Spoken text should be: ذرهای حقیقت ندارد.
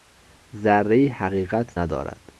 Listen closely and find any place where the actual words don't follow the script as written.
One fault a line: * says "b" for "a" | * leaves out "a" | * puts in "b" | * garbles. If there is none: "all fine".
all fine